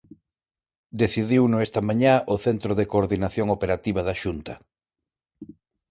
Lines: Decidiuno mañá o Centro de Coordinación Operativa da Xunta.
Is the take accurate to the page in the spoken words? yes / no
no